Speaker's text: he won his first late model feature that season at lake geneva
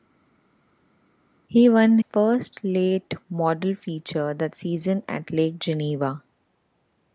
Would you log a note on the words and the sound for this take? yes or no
yes